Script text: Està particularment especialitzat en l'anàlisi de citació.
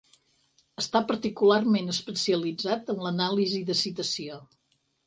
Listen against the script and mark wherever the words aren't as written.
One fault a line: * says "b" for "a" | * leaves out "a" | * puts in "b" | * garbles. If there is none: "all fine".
all fine